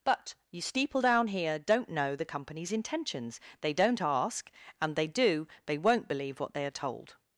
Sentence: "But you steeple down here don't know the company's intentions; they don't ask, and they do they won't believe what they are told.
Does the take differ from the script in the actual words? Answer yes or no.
no